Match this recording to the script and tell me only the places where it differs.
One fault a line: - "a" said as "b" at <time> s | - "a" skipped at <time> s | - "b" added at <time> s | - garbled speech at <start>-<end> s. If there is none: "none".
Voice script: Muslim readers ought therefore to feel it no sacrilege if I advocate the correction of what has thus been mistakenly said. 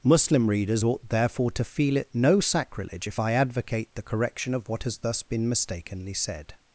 none